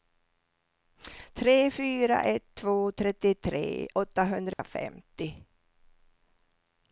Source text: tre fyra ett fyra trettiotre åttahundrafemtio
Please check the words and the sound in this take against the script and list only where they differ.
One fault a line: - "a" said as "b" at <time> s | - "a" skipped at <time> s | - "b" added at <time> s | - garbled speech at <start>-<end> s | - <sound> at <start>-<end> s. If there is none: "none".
- "fyra" said as "två" at 2.6 s
- dropout at 4.5-4.6 s